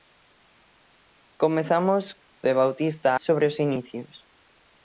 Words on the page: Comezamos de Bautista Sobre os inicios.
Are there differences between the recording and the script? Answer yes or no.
no